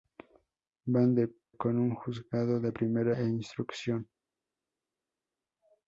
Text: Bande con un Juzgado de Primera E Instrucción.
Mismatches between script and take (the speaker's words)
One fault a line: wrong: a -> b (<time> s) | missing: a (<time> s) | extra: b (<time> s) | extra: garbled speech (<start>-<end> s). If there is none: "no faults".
no faults